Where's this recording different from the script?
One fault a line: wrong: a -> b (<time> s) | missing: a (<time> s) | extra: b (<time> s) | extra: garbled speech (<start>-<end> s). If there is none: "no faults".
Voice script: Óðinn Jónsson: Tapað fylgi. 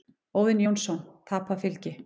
no faults